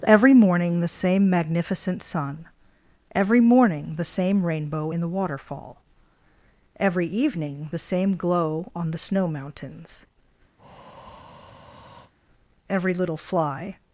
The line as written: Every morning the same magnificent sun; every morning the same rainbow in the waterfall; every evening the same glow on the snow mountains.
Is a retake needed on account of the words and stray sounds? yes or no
yes